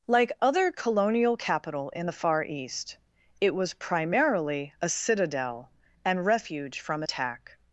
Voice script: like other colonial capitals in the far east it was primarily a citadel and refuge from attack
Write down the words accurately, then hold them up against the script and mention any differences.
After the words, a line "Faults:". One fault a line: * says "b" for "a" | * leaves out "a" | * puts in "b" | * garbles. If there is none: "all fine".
like other colonial capital in the far east it was primarily a citadel and refuge from attack
Faults:
* says "capital" for "capitals"